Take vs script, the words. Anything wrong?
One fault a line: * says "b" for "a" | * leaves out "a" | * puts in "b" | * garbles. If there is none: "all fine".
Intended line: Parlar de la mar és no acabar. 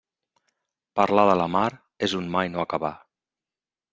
* puts in "un mai"